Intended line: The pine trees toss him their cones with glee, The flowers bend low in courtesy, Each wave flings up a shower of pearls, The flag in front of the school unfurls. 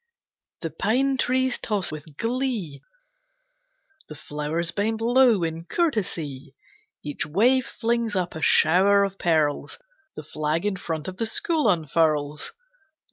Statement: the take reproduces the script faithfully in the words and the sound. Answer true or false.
false